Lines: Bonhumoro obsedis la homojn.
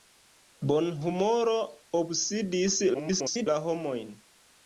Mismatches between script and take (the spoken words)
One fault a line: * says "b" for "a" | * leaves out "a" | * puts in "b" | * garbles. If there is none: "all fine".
* garbles